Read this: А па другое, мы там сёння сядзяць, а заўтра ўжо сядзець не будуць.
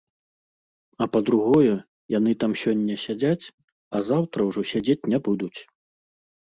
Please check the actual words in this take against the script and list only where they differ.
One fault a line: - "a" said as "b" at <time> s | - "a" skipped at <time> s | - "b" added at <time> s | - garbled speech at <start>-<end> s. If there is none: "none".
- "мы" said as "яны" at 2.2 s